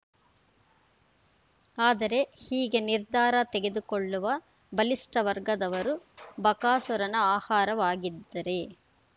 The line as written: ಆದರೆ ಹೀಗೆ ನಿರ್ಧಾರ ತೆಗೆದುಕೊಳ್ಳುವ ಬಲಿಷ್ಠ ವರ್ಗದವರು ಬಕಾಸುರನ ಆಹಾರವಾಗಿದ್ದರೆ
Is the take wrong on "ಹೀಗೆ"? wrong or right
right